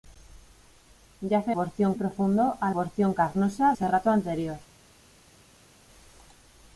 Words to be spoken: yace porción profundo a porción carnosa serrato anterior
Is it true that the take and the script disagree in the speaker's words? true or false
false